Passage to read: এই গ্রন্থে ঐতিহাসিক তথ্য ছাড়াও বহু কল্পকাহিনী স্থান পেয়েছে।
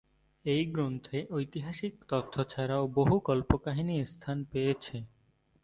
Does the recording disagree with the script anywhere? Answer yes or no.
no